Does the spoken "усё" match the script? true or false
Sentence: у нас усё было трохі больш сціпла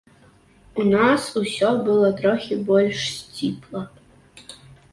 true